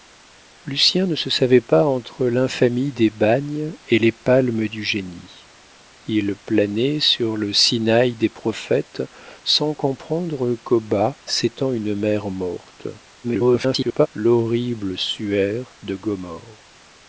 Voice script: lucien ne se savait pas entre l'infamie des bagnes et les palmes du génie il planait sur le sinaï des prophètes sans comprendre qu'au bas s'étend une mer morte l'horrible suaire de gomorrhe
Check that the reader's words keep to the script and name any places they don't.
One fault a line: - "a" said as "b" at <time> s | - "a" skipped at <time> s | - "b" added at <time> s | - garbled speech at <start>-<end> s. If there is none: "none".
- garbled speech at 13.2-14.1 s